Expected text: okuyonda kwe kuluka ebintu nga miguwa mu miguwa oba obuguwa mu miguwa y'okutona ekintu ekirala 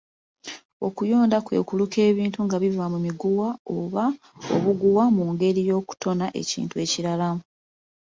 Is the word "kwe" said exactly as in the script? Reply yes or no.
yes